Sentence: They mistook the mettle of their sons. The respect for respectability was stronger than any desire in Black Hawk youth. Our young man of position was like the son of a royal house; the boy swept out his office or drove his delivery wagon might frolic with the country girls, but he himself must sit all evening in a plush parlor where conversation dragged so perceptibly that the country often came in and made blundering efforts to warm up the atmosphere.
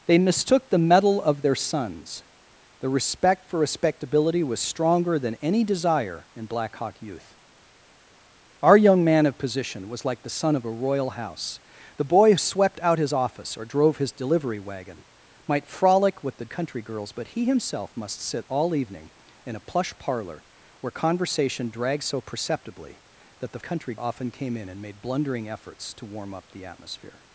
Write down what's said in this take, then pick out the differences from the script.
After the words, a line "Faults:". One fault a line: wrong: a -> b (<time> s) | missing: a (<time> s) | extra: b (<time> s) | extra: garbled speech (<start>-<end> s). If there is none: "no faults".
They mistook the mettle of their sons. The respect for respectability was stronger than any desire in Black Hawk youth. Our young man of position was like the son of a royal house; the boy swept out his office or drove his delivery wagon might frolic with the country girls, but he himself must sit all evening in a plush parlor where conversation dragged so perceptibly that the country often came in and made blundering efforts to warm up the atmosphere.
Faults:
no faults